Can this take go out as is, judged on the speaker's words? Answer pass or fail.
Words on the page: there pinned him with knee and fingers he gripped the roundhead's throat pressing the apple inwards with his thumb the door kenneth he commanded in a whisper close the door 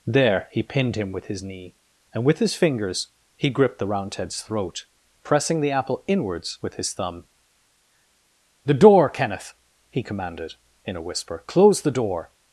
fail